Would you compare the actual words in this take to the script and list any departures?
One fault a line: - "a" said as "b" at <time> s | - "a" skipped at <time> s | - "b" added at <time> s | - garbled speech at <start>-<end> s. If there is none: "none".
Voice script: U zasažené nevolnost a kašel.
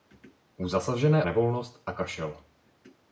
none